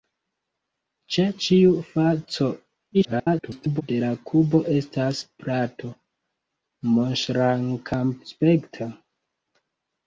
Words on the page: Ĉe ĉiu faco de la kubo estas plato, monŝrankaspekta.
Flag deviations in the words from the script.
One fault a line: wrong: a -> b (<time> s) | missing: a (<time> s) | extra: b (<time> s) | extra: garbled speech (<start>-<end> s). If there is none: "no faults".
extra: garbled speech (2.9-3.8 s)